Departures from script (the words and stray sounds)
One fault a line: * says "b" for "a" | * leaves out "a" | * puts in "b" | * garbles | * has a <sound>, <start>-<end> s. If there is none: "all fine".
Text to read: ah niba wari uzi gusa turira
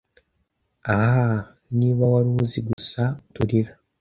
* has a dropout, 2.7-2.8 s